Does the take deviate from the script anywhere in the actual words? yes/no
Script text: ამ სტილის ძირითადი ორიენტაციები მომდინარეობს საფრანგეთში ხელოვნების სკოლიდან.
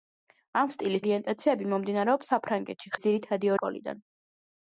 yes